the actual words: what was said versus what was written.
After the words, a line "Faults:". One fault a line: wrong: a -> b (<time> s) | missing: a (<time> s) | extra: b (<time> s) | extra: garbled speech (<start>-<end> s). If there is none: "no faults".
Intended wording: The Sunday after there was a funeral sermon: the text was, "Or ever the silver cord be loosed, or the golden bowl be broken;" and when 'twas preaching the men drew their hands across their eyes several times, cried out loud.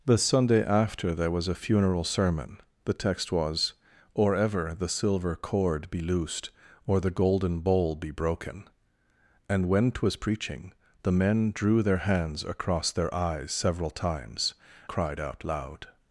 The Sunday after there was a funeral sermon: the text was, "Or ever the silver cord be loosed, or the golden bowl be broken;" and when 'twas preaching the men drew their hands across their eyes several times, cried out loud.
Faults:
no faults